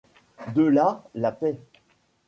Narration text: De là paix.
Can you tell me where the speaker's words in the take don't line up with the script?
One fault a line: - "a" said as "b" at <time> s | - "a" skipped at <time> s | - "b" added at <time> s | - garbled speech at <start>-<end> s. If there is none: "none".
- "la" added at 1.1 s